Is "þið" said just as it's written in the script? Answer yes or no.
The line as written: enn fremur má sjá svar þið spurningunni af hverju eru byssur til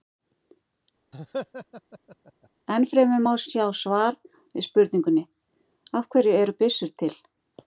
no